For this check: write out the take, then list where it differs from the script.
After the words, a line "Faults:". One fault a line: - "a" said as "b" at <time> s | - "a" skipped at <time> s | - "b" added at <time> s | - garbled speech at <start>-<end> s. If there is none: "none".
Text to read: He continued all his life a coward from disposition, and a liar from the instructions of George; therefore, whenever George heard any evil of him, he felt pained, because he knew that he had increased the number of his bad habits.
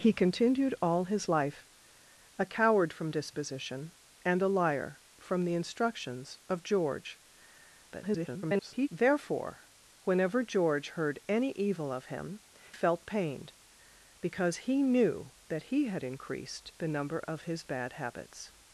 He continued all his life a coward from disposition, and a liar from the instructions of George; [garbled] therefore, whenever George heard any evil of him, felt pained, because he knew that he had increased the number of his bad habits.
Faults:
- garbled speech at 7.9-8.9 s
- "he" skipped at 12.4 s